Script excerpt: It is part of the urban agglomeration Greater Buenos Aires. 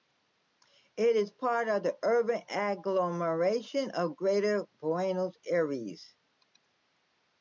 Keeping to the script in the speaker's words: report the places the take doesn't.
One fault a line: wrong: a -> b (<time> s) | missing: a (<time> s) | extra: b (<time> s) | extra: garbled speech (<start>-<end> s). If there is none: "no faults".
extra: of (3.9 s)